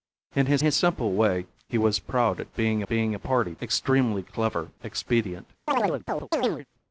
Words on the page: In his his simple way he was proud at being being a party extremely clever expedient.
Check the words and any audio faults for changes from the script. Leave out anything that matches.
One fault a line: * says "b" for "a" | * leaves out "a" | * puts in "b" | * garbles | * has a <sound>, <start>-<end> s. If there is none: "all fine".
* has a chirp, 5.7-6.7 s